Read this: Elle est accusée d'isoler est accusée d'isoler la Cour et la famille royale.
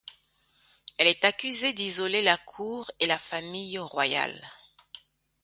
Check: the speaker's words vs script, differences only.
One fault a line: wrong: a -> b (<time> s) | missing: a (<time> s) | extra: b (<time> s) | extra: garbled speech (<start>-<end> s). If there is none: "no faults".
missing: est accusée d'isoler (2.2 s)